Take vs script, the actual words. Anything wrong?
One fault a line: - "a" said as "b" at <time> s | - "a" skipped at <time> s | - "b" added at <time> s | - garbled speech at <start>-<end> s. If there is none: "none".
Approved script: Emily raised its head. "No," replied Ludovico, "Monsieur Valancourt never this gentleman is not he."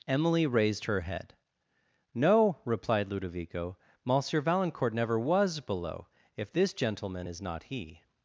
- "its" said as "her" at 0.8 s
- "was below if" added at 5.2 s